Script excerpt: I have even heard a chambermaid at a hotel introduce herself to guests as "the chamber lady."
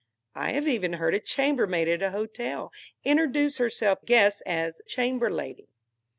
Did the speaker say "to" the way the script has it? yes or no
no